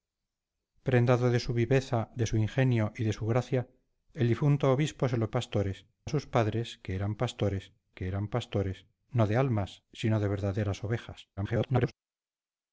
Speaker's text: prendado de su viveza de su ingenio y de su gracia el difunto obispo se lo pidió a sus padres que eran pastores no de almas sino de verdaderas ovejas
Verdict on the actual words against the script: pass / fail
fail